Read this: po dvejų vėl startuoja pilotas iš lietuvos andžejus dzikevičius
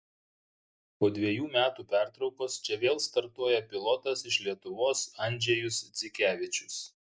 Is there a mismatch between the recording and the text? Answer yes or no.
yes